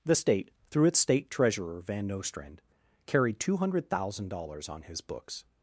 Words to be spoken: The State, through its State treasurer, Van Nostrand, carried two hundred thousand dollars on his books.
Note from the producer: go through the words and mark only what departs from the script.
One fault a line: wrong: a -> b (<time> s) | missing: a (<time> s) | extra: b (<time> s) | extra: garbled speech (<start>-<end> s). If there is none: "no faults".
no faults